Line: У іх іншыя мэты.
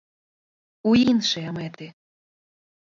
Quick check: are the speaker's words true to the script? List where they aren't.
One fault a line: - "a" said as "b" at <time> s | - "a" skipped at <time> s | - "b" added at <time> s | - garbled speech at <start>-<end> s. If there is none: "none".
- "іх" skipped at 0.9 s